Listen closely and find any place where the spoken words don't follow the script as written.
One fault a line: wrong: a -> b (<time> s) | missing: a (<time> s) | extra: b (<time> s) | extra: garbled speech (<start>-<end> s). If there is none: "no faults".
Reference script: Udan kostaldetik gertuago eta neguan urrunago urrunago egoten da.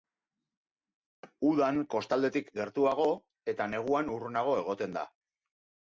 missing: urrunago (4.6 s)